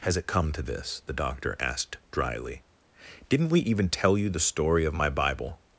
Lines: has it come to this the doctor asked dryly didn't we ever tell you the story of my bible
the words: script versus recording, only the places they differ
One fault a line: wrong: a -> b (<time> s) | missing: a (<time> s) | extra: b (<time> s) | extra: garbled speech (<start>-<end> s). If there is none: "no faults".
wrong: ever -> even (3.6 s)